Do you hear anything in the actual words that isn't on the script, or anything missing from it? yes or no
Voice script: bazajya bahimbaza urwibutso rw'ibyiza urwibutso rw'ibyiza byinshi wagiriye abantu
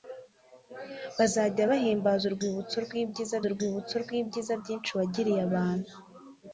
no